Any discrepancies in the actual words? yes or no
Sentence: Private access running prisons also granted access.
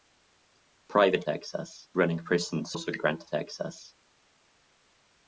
no